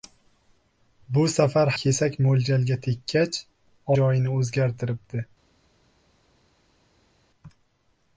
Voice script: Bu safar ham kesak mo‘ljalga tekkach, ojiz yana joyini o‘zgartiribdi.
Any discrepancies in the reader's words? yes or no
yes